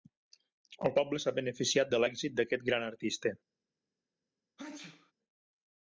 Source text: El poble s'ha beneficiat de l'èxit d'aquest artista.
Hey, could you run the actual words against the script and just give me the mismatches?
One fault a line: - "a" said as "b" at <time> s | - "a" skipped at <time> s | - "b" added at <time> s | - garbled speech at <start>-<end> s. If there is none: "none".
- "gran" added at 2.7 s